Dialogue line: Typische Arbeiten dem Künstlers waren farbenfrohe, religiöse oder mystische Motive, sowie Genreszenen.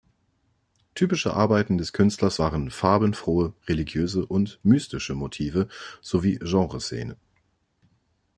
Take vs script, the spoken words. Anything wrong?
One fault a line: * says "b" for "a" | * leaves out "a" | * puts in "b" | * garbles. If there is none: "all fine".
* says "des" for "dem"
* says "und" for "oder"